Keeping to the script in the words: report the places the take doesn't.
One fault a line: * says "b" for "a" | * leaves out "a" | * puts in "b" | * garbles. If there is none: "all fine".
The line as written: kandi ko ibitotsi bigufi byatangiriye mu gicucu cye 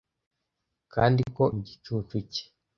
* leaves out "ibitotsi bigufi byatangiriye"